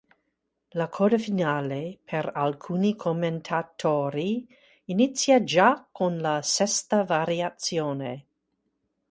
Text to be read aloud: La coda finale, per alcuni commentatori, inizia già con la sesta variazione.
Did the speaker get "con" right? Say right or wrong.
right